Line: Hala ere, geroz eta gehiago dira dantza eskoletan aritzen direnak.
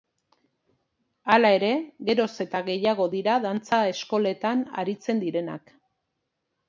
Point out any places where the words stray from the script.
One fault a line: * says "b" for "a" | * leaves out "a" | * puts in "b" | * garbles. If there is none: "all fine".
all fine